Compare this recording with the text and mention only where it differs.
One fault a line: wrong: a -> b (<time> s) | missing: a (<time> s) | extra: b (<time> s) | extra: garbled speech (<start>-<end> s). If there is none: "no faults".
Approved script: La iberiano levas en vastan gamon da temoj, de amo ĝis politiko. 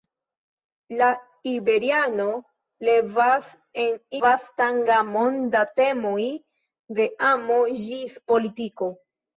no faults